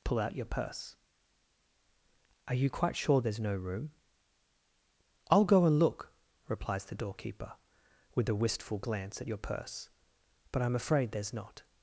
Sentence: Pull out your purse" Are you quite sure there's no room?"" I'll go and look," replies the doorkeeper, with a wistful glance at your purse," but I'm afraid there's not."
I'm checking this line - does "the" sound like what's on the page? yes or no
yes